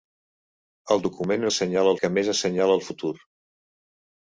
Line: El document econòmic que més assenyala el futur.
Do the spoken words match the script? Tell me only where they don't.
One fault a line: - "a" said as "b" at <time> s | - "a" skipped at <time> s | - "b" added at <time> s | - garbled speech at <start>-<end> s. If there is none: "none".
- "econòmic" said as "assenyala" at 1.5 s